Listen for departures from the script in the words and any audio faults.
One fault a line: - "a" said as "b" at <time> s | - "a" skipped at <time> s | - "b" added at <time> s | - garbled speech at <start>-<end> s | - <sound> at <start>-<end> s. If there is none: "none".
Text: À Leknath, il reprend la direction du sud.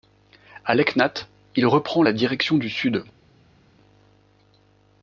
none